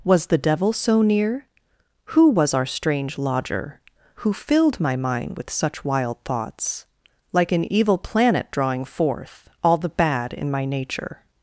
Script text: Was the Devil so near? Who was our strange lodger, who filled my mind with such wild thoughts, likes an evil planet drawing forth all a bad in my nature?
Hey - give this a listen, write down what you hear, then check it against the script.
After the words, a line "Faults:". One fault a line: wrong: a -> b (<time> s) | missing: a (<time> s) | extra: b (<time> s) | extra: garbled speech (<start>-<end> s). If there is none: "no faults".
Was the Devil so near? Who was our strange lodger, who filled my mind with such wild thoughts, like an evil planet drawing forth all the bad in my nature?
Faults:
wrong: likes -> like (7.3 s)
wrong: a -> the (9.8 s)